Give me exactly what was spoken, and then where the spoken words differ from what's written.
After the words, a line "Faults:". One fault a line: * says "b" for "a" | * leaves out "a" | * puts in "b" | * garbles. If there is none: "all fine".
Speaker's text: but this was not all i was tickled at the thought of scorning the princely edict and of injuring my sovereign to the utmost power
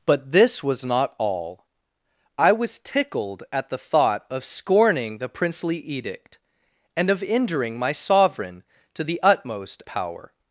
but this was not all i was tickled at the thought of scorning the princely edict and of injuring my sovereign to the utmost power
Faults:
all fine